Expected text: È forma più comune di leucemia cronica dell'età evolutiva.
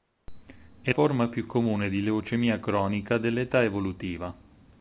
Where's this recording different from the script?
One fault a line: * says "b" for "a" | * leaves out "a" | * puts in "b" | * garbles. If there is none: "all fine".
all fine